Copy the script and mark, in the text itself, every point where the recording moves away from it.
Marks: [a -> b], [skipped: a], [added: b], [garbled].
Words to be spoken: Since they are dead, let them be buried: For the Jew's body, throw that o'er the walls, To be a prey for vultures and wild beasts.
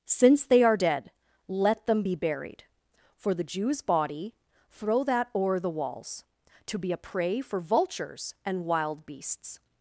Since they are dead, let them be buried: For the Jew's body, throw that o'er the walls, To be a prey for vultures and wild beasts.